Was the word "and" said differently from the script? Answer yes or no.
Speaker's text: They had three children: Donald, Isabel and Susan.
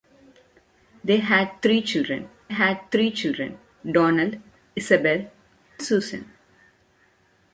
yes